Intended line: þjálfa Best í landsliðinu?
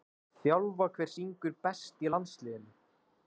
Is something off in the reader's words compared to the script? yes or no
yes